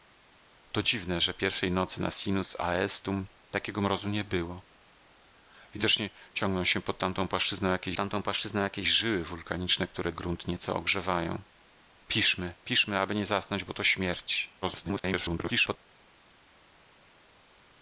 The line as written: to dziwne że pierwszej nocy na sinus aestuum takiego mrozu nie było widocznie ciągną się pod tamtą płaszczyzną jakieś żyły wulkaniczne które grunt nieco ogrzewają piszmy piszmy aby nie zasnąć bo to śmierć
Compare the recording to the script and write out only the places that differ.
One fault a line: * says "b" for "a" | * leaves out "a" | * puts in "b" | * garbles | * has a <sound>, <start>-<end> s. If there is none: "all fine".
* puts in "tamtą płaszczyzną jakieś"
* garbles